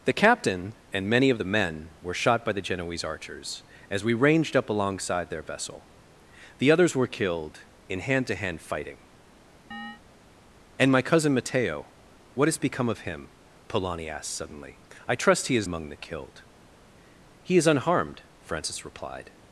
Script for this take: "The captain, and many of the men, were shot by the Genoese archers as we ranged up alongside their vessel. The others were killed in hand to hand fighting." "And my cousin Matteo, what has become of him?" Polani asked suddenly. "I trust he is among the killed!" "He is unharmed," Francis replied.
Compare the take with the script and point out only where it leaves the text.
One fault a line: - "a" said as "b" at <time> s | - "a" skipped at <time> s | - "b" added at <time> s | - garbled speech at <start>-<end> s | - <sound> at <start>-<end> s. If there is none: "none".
- chirp at 9.7-10.0 s